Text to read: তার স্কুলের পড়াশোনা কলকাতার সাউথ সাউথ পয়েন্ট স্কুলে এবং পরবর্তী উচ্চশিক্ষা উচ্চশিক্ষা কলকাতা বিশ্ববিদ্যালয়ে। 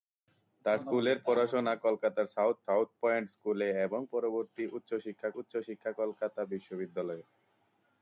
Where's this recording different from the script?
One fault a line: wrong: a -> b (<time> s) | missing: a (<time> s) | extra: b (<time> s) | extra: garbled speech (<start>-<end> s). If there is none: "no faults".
no faults